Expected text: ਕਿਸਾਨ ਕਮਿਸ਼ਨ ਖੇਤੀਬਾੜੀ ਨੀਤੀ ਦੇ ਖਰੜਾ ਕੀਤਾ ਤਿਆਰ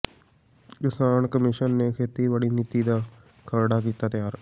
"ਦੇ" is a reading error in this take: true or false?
true